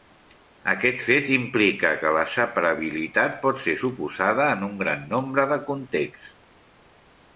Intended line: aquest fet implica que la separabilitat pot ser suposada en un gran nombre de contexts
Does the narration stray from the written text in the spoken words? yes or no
no